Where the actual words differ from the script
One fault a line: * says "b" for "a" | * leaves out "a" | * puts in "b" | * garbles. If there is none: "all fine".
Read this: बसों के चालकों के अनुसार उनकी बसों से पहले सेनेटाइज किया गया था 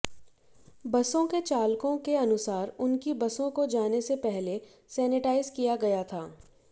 * puts in "को जाने"